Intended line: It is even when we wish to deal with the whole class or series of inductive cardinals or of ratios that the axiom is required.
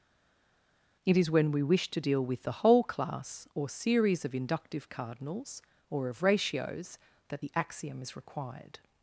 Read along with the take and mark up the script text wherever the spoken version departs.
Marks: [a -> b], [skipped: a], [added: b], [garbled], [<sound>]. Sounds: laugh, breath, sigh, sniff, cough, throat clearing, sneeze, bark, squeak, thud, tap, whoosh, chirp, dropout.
It is [skipped: even] when we wish to deal with the whole class or series of inductive cardinals or of ratios that the axiom is required.